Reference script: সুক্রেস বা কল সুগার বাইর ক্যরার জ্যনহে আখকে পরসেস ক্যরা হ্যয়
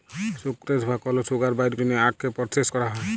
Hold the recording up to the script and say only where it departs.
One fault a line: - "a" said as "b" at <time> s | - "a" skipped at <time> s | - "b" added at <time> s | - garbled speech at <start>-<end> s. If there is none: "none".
- "ক্যরার" skipped at 1.7 s